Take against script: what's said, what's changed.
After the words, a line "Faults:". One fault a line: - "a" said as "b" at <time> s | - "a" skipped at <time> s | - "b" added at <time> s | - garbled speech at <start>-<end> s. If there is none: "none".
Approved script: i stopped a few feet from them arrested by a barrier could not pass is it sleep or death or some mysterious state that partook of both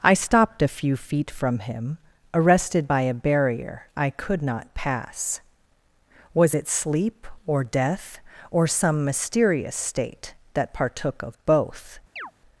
i stopped a few feet from him arrested by a barrier i could not pass was it sleep or death or some mysterious state that partook of both
Faults:
- "them" said as "him" at 1.6 s
- "i" added at 4.0 s
- "is" said as "was" at 6.3 s